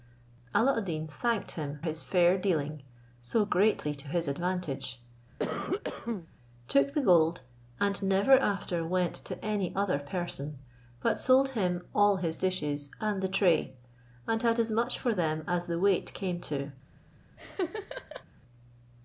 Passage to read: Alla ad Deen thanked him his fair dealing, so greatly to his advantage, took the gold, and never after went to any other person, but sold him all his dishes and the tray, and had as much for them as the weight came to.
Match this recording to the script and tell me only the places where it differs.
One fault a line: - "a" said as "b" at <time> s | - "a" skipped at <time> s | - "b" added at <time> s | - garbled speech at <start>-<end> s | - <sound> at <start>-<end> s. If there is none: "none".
- cough at 5.4-6.3 s
- laugh at 17.4-18.2 s